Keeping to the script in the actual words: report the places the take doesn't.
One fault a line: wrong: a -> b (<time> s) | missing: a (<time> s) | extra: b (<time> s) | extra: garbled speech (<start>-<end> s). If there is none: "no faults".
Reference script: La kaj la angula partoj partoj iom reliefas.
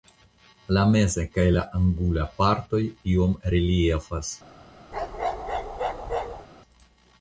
extra: meza (0.9 s)
missing: partoj (2.8 s)